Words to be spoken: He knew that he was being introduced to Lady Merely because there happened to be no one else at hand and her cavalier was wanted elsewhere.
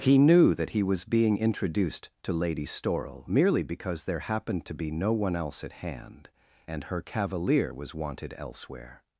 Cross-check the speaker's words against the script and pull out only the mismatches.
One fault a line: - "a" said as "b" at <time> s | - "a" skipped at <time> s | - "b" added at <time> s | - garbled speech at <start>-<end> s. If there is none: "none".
- "Storrel" added at 2.6 s